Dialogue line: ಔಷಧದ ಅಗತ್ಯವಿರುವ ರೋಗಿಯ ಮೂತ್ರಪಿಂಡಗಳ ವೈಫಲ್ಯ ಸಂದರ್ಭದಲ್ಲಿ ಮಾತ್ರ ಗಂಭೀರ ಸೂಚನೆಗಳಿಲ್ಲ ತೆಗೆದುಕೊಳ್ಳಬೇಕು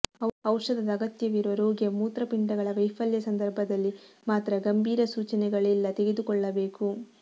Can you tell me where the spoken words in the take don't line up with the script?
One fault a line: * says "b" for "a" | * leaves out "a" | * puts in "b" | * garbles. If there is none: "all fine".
all fine